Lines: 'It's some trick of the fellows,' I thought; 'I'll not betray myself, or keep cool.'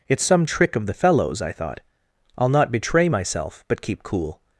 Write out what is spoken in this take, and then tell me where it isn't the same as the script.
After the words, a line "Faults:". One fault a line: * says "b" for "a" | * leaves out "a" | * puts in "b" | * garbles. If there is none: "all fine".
'It's some trick of the fellows,' I thought; 'I'll not betray myself, but keep cool.'
Faults:
* says "but" for "or"